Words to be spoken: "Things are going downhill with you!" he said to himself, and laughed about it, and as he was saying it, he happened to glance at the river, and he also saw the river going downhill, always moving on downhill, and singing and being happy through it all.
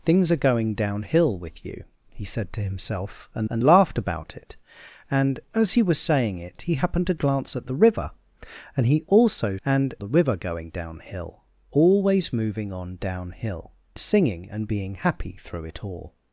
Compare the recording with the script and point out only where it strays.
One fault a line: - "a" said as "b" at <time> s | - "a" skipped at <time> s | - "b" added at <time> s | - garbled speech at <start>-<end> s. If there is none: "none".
- "and" added at 3.5 s
- "saw" said as "and" at 9.6 s
- "and" skipped at 13.7 s